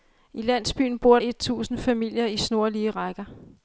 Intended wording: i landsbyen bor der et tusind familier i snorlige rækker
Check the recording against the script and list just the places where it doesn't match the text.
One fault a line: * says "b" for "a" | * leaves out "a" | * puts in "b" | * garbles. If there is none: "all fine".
* leaves out "der"